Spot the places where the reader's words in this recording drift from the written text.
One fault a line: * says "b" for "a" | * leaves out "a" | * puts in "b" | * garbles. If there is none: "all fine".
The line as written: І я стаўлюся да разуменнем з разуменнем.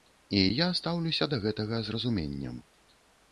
* says "гэтага" for "разуменнем"